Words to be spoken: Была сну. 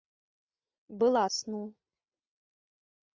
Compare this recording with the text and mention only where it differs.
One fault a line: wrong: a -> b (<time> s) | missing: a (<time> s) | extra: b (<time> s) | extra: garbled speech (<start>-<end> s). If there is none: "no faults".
no faults